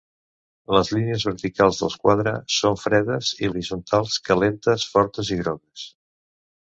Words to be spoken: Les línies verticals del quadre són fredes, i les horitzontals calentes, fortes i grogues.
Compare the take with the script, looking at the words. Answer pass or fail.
fail